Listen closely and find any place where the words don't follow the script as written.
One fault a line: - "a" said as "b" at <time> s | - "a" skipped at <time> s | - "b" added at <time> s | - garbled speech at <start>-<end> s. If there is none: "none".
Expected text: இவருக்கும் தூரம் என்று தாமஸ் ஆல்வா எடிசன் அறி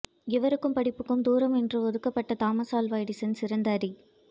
- "படிப்புக்கும்" added at 0.7 s
- "ஒதுக்கப்பட்ட" added at 1.8 s
- "சிறந்த" added at 3.4 s